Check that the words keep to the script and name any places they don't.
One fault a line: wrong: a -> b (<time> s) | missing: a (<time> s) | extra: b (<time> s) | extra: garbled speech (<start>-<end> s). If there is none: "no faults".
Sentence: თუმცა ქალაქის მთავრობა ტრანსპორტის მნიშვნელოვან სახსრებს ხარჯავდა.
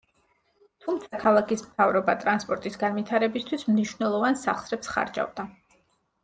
extra: განვითარებისთვის (2.8 s)